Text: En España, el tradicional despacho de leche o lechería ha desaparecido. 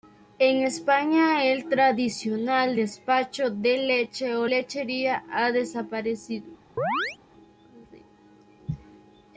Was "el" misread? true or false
false